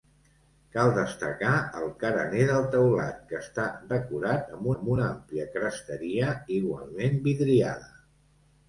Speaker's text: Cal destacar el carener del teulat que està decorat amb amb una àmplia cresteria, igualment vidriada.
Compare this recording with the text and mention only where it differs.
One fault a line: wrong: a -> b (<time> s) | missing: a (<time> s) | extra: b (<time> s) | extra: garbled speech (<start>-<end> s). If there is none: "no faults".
no faults